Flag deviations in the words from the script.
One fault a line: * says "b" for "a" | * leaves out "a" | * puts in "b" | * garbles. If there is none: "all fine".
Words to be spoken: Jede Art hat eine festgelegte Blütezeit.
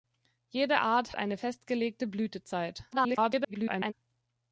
* leaves out "hat"
* garbles